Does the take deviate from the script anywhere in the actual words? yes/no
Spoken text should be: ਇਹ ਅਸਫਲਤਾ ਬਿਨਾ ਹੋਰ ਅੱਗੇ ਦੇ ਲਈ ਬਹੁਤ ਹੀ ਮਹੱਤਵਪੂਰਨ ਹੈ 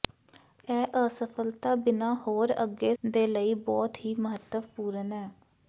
no